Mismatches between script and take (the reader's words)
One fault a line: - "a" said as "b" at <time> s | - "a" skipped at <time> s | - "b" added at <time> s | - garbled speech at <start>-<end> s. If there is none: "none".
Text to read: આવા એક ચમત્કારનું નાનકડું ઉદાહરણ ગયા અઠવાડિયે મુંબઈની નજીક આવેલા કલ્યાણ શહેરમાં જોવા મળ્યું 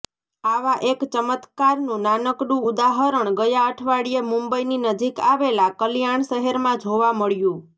none